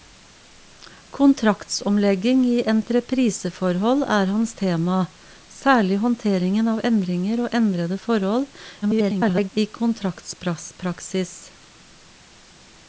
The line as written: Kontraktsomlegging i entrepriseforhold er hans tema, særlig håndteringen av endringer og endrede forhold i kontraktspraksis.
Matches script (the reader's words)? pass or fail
fail